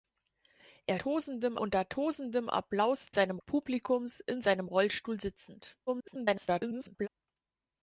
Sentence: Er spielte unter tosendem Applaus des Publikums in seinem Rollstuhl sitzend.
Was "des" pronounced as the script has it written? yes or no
no